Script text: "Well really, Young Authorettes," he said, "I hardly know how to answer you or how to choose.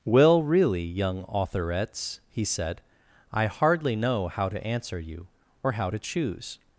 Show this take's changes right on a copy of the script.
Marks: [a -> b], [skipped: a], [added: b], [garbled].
"Well really, Young Authorettes," he said, "I hardly know how to answer you or how to choose.